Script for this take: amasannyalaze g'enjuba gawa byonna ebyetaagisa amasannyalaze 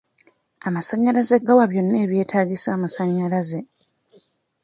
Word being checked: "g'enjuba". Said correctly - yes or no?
no